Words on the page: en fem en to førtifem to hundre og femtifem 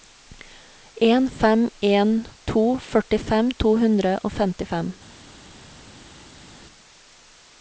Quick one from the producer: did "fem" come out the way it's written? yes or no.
yes